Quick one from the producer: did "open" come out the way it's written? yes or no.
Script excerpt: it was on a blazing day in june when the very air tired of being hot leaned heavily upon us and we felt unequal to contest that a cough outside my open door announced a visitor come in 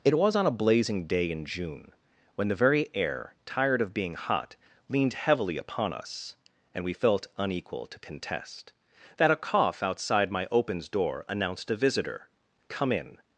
no